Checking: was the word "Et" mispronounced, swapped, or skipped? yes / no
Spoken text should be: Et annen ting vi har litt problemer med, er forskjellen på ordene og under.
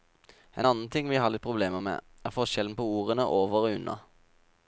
yes